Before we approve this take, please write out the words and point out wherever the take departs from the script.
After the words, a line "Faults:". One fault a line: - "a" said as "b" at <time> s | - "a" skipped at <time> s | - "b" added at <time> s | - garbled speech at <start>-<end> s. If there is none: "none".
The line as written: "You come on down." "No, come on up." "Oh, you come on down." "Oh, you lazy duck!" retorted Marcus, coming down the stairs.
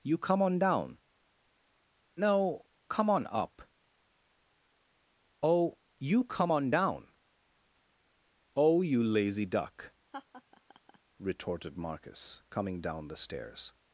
"You come on down." "No, come on up." "Oh, you come on down." "Oh, you lazy duck!" retorted Marcus, coming down the stairs.
Faults:
none